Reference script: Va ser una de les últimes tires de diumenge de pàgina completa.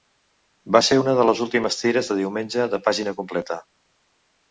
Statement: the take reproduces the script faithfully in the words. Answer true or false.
true